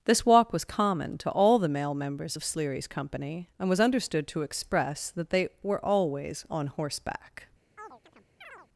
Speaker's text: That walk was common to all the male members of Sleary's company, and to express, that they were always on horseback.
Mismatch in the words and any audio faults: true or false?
true